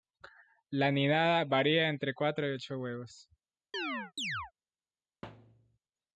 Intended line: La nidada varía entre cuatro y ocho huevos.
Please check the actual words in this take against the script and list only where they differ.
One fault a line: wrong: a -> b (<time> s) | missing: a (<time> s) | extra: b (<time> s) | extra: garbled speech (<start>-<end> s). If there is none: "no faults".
no faults